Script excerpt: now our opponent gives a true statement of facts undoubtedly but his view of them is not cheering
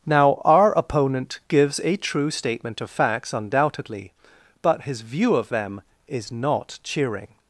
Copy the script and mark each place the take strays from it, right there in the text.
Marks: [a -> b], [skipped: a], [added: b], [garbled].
now our opponent gives a true statement of facts undoubtedly but his view of them is not cheering